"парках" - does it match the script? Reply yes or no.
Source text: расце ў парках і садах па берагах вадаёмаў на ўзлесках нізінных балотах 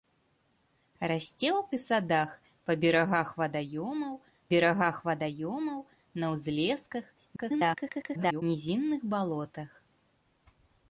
no